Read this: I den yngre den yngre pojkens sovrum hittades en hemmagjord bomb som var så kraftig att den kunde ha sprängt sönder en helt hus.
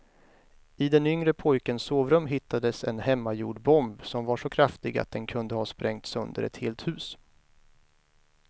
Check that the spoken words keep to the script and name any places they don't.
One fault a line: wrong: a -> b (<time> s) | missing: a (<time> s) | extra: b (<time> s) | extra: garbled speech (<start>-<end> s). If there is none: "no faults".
missing: den yngre (1.3 s)
wrong: en -> ett (6.4 s)